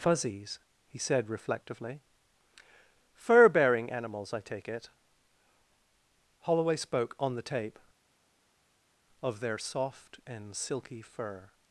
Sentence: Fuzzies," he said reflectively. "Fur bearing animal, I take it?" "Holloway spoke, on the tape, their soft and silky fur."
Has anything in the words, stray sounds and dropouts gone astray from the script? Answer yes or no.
yes